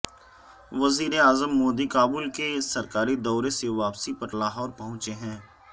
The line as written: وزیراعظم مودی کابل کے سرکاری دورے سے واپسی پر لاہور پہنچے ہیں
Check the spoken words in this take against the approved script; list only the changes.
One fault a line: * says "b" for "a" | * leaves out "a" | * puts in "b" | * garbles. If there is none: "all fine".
all fine